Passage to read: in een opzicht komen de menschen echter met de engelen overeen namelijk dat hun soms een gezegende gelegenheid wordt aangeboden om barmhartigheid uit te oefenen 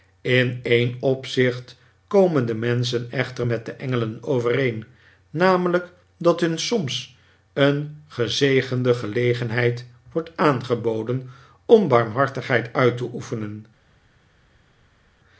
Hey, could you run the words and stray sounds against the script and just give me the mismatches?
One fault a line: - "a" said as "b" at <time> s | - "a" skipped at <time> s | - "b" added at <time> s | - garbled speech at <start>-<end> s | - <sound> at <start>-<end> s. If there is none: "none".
none